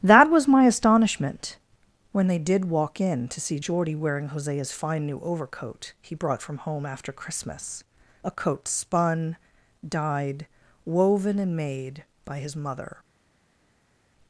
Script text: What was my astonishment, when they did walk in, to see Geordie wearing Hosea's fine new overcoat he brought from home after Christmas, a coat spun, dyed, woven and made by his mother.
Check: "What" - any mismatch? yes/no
yes